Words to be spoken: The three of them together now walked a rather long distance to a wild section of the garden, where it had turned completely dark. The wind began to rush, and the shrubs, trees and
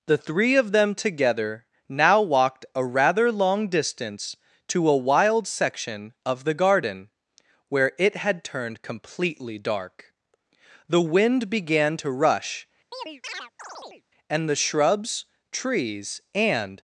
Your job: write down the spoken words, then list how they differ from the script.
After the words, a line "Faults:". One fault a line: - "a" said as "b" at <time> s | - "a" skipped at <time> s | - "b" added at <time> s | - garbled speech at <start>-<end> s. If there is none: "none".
The three of them together now walked a rather long distance to a wild section of the garden, where it had turned completely dark. The wind began to rush, and the shrubs, trees and
Faults:
none